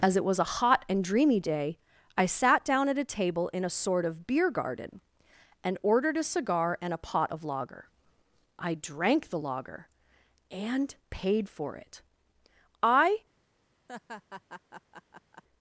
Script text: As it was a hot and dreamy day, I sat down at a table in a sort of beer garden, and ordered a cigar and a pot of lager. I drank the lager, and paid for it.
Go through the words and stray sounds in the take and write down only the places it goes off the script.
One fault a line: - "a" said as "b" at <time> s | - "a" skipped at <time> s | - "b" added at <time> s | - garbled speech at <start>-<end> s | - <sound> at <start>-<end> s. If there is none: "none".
- "I" added at 12.8 s
- laugh at 13.9-15.4 s